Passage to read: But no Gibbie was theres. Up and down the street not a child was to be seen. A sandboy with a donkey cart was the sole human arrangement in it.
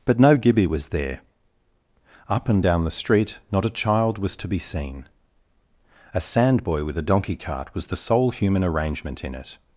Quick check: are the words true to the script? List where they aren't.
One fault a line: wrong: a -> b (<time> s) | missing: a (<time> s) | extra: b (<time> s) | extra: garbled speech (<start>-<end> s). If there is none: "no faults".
wrong: theres -> there (0.9 s)